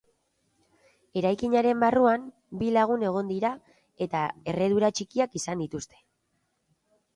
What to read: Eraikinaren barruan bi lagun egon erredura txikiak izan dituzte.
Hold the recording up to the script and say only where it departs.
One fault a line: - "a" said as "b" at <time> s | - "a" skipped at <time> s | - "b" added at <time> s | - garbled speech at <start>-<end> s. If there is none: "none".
- "dira eta" added at 3.3 s